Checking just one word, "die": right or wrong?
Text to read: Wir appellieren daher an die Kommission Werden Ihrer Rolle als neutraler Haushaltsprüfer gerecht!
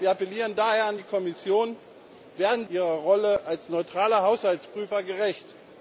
right